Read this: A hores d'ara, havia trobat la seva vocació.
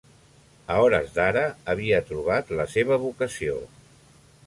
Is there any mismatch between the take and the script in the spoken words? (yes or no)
no